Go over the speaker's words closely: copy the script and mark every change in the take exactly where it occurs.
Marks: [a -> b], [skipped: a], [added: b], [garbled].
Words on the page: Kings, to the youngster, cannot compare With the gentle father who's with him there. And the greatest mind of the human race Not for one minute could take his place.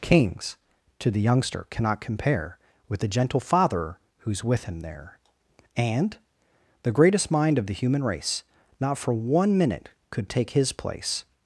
Kings, to the youngster, cannot compare With the gentle father who's with him there. And the greatest mind of the human race Not for one minute could take his place.